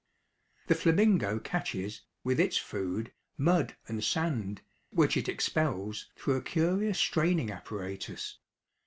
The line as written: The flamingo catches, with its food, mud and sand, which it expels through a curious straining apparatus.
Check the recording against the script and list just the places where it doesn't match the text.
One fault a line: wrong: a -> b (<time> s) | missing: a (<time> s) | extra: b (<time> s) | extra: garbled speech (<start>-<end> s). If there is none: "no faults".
no faults